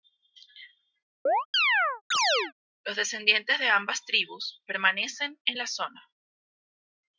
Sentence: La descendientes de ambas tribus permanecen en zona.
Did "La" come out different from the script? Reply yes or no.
yes